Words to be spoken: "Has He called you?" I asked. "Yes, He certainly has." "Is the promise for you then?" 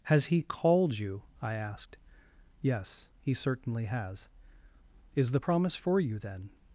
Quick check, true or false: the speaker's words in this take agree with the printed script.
true